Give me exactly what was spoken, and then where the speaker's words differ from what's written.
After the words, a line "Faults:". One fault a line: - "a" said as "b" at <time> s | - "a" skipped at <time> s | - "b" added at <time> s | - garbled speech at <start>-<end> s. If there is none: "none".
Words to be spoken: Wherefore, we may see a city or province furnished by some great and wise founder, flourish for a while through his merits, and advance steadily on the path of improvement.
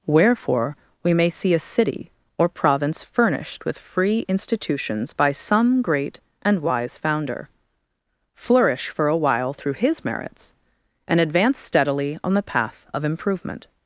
Wherefore, we may see a city or province furnished with free institutions by some great and wise founder, flourish for a while through his merits, and advance steadily on the path of improvement.
Faults:
- "with free institutions" added at 3.6 s